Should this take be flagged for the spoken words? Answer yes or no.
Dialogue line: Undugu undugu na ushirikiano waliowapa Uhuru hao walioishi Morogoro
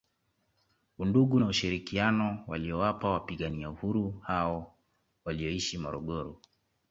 yes